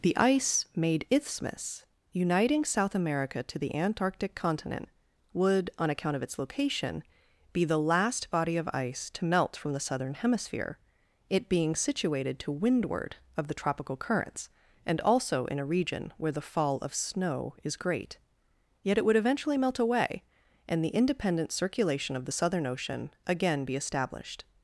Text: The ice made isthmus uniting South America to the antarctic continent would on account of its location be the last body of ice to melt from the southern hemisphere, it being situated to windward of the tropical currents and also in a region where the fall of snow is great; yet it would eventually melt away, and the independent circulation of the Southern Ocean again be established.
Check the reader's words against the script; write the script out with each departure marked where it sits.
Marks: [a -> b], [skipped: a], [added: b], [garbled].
The ice made isthmus uniting South America to the antarctic continent would on account of its location be the last body of ice to melt from the southern hemisphere, it being situated to windward of the tropical currents and also in a region where the fall of snow is great; yet it would eventually melt away, and the independent circulation of the Southern Ocean again be established.